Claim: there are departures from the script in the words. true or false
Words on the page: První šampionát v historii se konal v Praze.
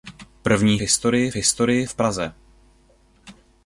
true